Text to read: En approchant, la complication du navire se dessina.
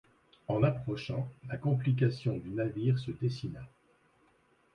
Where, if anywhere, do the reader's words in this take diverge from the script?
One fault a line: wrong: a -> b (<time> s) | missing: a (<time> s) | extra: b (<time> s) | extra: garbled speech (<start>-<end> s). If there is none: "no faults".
no faults